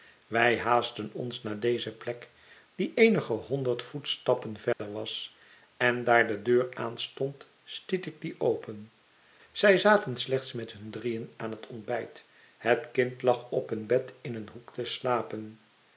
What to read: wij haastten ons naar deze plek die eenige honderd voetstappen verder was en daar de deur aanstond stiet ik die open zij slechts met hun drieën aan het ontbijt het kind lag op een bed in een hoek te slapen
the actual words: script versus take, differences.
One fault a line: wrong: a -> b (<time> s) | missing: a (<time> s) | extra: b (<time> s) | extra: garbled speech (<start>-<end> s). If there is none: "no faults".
extra: zaten (9.8 s)